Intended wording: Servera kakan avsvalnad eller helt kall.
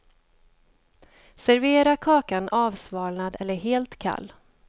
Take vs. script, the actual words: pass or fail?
pass